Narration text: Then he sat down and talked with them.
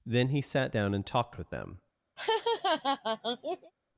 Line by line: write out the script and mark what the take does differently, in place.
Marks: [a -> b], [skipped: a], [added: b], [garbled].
Then he sat down and talked with them.